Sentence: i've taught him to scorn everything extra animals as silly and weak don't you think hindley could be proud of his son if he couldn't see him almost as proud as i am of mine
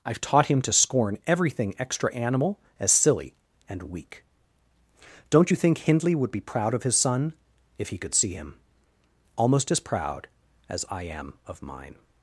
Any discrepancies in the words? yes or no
yes